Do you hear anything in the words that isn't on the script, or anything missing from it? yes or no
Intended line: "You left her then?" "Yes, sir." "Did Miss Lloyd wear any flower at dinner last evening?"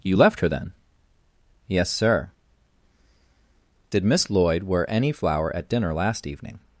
no